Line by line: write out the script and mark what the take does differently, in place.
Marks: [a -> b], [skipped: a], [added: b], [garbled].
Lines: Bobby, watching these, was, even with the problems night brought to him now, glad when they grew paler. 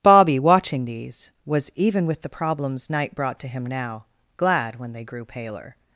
Bobby, watching these, was, even with the problems night brought to him now, glad when they grew paler.